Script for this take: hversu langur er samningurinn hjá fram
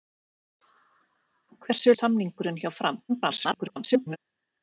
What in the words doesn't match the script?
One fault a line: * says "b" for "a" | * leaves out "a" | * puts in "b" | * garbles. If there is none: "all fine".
* leaves out "langur"
* garbles